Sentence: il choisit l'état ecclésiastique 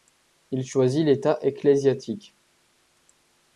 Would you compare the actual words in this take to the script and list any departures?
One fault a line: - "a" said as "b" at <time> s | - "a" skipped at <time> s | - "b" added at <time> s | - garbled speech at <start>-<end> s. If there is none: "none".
none